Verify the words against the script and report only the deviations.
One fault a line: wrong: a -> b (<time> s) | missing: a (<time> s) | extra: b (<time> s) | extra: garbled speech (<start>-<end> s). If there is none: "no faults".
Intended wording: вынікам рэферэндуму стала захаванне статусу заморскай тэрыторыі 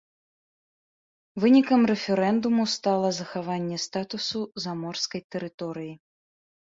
no faults